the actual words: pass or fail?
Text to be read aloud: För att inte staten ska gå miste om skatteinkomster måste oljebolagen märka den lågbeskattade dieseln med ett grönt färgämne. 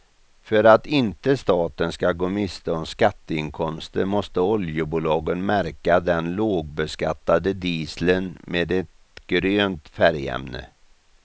pass